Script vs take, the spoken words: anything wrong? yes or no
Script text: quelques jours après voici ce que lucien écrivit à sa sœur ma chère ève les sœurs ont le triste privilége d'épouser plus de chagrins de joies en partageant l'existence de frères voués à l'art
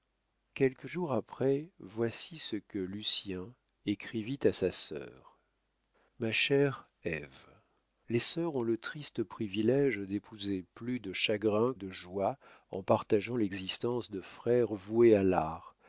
no